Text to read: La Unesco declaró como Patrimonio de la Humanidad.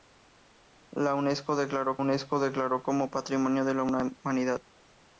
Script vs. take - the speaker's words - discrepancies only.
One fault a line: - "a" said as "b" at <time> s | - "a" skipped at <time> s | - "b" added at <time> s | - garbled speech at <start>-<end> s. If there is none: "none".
- "Unesco declaró" added at 2.0 s